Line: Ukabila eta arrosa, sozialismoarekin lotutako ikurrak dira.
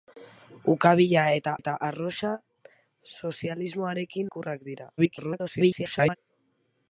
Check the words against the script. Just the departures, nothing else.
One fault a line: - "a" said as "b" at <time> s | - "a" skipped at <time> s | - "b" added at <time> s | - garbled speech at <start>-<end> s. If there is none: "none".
- "eta" added at 1.6 s
- "lotutako" skipped at 4.3 s
- garbled speech at 5.0-6.2 s